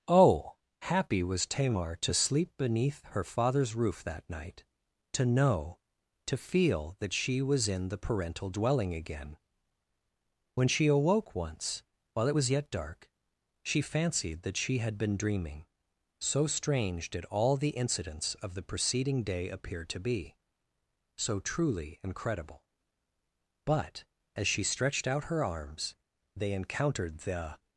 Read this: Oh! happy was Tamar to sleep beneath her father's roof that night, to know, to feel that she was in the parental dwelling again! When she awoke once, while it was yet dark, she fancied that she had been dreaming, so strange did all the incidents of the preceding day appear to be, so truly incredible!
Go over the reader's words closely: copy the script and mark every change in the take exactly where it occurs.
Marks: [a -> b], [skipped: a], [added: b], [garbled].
Oh! happy was Tamar to sleep beneath her father's roof that night, to know, to feel that she was in the parental dwelling again! When she awoke once, while it was yet dark, she fancied that she had been dreaming, so strange did all the incidents of the preceding day appear to be, so truly incredible! [added: But as she stretched out her arms they encountered the]